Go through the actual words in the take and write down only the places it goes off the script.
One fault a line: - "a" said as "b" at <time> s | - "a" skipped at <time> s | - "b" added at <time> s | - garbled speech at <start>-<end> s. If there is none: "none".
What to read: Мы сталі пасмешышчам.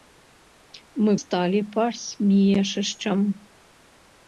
none